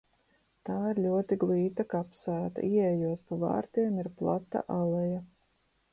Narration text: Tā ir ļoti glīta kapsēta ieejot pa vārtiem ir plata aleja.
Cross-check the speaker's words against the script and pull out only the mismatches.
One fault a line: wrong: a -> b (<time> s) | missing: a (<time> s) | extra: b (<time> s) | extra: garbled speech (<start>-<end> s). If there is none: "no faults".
no faults